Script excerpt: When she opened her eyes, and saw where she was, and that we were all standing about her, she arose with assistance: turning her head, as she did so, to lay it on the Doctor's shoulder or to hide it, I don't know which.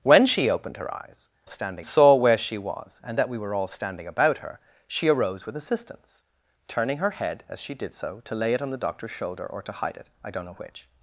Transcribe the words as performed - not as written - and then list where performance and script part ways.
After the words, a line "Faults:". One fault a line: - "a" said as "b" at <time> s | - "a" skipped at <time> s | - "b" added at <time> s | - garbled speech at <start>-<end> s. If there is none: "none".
When she opened her eyes, standing saw where she was, and that we were all standing about her, she arose with assistance: turning her head, as she did so, to lay it on the Doctor's shoulder or to hide it, I don't know which.
Faults:
- "and" said as "standing" at 1.5 s